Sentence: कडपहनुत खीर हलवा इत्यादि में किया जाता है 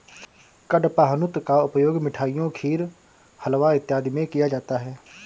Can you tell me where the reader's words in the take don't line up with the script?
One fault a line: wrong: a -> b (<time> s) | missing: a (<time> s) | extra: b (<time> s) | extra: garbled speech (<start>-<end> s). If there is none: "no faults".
extra: का उपयोग मिठाइयों (1.5 s)